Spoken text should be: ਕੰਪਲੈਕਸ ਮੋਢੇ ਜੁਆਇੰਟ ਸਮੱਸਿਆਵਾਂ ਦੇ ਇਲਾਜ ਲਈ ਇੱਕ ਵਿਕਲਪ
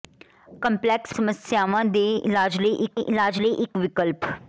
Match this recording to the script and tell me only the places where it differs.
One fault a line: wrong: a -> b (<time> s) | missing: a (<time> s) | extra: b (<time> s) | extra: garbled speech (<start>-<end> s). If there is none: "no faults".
wrong: ਮੋਢੇ ਜੁਆਇੰਟ ਸਮੱਸਿਆਵਾਂ ਦੇ -> ਸਮੱਸਿਆਵਾਂ ਦੇ ਇਲਾਜ ਲਈ ਇੱਕ (1.1 s)